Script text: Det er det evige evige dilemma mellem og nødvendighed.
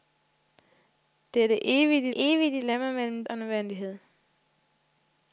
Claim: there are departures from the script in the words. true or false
false